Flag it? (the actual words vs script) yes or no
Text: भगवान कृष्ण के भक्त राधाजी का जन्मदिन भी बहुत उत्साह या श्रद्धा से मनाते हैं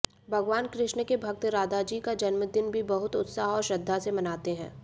yes